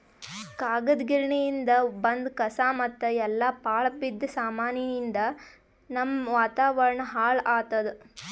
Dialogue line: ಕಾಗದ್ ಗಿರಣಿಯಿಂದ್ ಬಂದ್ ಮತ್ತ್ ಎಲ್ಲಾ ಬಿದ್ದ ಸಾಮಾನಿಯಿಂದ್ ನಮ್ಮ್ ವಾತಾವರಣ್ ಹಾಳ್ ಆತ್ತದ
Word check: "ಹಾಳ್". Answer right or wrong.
right